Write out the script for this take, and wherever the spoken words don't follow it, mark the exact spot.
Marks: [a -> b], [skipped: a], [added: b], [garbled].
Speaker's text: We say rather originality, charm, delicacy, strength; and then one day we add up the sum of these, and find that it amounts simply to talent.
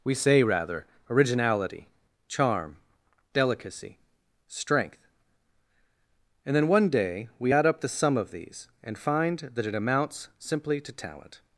We say rather originality, charm, delicacy, strength; and then one day we add up the sum of these, and find that it amounts simply to talent.